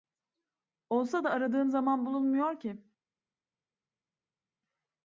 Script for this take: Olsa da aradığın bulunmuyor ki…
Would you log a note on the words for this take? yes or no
yes